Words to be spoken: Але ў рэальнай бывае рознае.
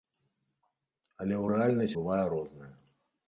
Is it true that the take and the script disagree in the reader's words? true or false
false